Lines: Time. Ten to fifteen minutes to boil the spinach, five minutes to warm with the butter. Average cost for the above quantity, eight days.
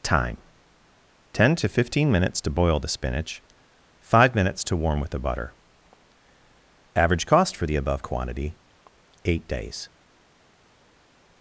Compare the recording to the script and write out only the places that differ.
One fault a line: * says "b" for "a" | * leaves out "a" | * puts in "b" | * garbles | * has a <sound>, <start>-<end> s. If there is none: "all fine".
all fine